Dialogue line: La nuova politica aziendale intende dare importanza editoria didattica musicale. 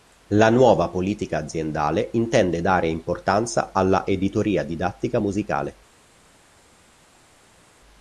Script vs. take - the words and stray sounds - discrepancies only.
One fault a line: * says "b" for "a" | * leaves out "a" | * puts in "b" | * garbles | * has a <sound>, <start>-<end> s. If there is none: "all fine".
* puts in "alla"